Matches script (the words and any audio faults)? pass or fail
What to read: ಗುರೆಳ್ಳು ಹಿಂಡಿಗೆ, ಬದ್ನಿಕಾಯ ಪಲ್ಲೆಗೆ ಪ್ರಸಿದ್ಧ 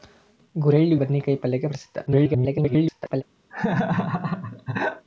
fail